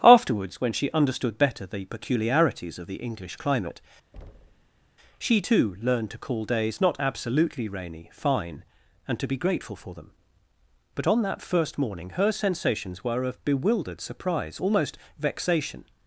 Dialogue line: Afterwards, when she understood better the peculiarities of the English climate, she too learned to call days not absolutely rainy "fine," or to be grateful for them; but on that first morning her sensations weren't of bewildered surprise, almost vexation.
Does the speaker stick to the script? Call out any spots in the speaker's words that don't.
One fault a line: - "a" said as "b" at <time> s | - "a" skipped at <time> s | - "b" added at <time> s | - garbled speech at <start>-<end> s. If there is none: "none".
- "or" said as "and" at 9.1 s
- "weren't" said as "were" at 13.0 s